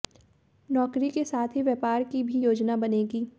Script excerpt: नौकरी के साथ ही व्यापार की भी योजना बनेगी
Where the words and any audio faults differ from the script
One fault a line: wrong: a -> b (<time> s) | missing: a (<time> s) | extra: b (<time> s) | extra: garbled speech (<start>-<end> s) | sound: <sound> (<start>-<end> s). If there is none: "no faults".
no faults